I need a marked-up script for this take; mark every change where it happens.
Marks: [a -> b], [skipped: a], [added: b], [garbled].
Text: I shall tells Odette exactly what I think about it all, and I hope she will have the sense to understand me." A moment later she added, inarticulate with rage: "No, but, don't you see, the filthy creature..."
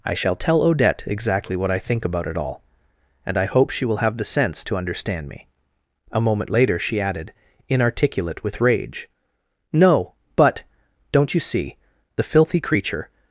I shall [tells -> tell] Odette exactly what I think about it all, and I hope she will have the sense to understand me." A moment later she added, inarticulate with rage: "No, but, don't you see, the filthy creature..."